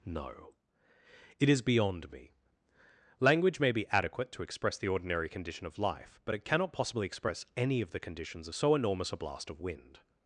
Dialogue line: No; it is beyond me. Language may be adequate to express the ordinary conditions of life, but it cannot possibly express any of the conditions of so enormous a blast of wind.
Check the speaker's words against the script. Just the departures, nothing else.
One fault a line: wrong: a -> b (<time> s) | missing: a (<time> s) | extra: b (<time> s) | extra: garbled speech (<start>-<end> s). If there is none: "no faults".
wrong: conditions -> condition (5.3 s)